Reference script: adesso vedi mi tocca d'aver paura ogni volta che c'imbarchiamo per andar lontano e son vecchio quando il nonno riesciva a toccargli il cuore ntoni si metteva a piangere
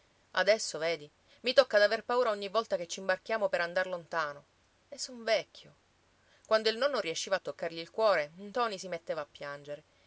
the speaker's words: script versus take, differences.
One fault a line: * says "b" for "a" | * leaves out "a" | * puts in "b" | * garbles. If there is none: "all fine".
all fine